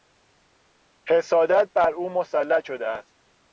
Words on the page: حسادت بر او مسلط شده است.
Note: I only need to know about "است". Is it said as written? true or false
true